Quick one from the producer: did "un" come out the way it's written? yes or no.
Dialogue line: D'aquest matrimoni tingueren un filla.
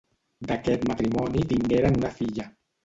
no